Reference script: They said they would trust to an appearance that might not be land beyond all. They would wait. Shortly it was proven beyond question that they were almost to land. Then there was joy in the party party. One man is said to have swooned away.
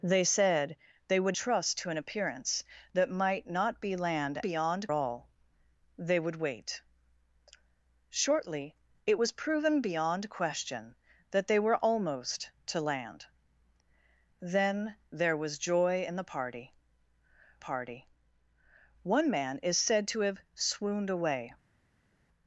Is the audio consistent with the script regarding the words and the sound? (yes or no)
yes